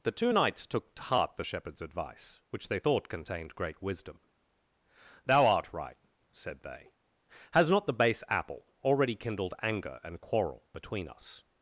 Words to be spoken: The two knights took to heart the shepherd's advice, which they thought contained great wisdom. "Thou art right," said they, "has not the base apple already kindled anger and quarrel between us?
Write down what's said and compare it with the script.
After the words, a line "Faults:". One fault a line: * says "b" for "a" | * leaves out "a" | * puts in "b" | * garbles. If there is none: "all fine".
The two knights took to heart the shepherd's advice, which they thought contained great wisdom. "Thou art right," said they, "has not the base apple already kindled anger and quarrel between us?
Faults:
all fine